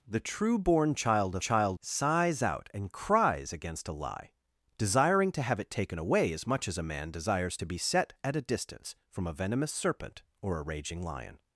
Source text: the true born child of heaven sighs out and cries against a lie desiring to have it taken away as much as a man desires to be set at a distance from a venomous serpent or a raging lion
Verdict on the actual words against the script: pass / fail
fail